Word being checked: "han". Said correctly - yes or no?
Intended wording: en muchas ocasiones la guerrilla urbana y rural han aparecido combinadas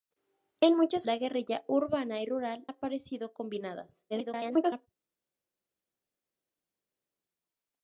no